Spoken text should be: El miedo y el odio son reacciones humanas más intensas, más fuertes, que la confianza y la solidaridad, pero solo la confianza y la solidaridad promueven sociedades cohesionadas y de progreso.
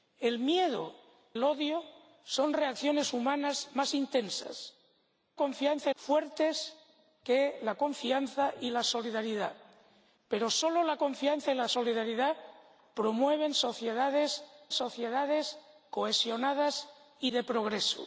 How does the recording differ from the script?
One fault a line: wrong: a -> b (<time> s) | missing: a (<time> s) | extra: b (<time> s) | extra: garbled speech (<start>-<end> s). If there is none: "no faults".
missing: y (0.9 s)
wrong: más -> confianza (5.4 s)
extra: sociedades (14.7 s)